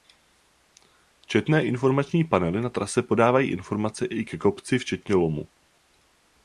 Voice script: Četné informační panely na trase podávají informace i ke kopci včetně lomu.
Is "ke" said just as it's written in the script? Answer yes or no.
yes